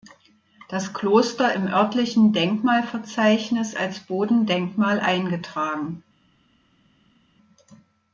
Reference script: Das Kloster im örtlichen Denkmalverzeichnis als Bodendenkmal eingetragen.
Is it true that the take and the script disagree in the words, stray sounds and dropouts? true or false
false